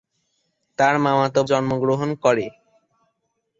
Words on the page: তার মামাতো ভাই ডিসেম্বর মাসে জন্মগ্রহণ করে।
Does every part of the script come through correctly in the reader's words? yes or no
no